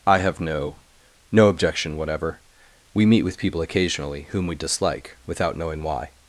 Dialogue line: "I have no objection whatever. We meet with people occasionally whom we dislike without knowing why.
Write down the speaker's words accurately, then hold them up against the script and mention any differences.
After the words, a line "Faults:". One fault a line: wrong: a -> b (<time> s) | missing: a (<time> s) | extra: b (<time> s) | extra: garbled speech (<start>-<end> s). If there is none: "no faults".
"I have no no objection whatever. We meet with people occasionally whom we dislike without knowing why.
Faults:
extra: no (1.3 s)